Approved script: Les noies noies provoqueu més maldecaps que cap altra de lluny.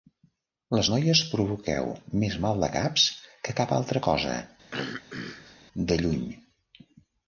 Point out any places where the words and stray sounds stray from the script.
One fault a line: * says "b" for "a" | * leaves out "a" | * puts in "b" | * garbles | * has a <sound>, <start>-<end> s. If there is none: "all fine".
* leaves out "noies"
* puts in "cosa"
* has a throat clearing, 4.7-5.6 s